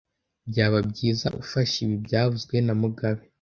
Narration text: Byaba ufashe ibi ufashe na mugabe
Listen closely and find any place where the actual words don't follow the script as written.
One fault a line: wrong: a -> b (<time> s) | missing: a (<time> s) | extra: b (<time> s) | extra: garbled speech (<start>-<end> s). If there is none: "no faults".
extra: byiza (0.9 s)
wrong: ufashe -> byavuzwe (2.0 s)